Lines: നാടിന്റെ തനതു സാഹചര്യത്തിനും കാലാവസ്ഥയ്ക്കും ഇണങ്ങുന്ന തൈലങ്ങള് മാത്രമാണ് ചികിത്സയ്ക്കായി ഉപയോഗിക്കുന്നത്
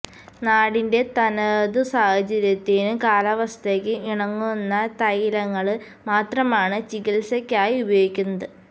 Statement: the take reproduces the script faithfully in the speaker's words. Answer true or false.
true